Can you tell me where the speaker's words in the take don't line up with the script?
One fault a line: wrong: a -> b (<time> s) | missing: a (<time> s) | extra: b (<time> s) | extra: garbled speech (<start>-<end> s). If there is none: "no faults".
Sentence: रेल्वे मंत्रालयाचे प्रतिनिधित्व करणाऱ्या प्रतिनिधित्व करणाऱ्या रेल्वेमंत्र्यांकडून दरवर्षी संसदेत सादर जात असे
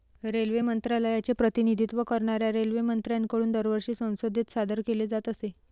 missing: प्रतिनिधित्व करणाऱ्या (2.5 s)
extra: केले (4.9 s)